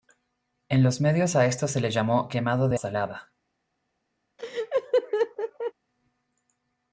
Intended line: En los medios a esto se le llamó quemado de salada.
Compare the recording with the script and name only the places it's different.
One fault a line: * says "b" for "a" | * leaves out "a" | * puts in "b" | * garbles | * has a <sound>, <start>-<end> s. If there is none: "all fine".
* has a laugh, 4.4-5.7 s